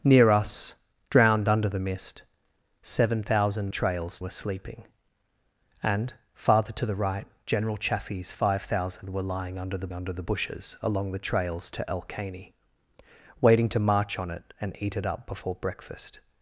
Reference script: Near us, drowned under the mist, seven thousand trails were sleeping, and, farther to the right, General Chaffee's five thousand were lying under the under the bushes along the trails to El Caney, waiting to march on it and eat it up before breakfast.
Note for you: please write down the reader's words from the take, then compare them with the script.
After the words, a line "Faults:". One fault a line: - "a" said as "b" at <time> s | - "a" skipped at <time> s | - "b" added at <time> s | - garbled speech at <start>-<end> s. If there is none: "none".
Near us, drowned under the mist, seven thousand trails were sleeping, and, farther to the right, General Chaffee's five thousand were lying under the under the bushes along the trails to El Caney, waiting to march on it and eat it up before breakfast.
Faults:
none